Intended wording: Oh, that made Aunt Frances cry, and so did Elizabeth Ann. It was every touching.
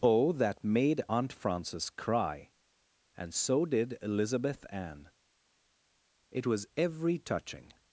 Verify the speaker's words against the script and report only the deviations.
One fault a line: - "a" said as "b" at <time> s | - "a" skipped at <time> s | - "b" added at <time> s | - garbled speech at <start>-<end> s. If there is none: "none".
none